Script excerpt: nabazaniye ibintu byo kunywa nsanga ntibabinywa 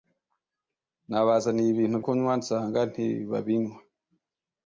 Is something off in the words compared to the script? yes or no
yes